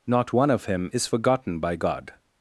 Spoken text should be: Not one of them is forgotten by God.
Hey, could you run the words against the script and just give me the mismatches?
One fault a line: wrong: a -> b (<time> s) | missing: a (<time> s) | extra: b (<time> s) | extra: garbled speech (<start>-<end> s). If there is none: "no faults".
wrong: them -> him (0.7 s)